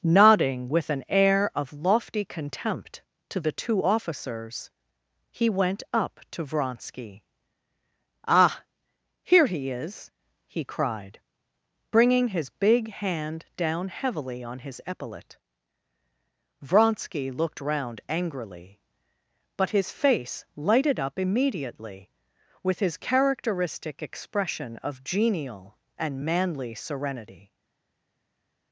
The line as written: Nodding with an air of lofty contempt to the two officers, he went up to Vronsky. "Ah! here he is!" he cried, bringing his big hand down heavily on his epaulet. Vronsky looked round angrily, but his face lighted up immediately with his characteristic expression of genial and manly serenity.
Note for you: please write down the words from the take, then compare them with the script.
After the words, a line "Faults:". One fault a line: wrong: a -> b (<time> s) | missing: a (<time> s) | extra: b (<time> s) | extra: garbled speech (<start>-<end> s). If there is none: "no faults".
Nodding with an air of lofty contempt to the two officers, he went up to Vronsky. "Ah! here he is!" he cried, bringing his big hand down heavily on his epaulet. Vronsky looked round angrily, but his face lighted up immediately with his characteristic expression of genial and manly serenity.
Faults:
no faults